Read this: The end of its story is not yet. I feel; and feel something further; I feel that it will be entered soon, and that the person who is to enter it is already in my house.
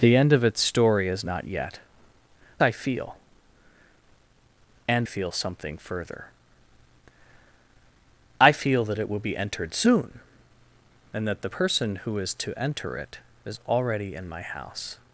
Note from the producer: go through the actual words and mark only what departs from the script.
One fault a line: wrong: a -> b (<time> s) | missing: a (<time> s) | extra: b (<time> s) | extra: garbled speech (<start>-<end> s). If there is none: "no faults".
no faults